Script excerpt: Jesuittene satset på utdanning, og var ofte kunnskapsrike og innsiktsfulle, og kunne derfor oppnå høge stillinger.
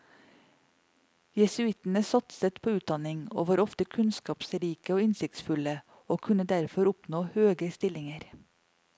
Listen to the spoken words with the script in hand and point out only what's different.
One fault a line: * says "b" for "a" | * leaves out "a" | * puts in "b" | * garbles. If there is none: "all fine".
all fine